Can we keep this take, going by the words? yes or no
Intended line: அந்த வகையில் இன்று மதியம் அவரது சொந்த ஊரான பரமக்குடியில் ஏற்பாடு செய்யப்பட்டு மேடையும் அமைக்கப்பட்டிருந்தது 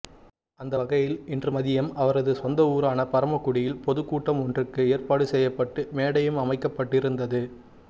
no